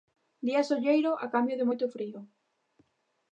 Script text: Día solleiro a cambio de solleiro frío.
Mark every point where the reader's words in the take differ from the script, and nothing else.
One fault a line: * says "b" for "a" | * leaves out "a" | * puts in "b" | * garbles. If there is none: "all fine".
* says "moito" for "solleiro"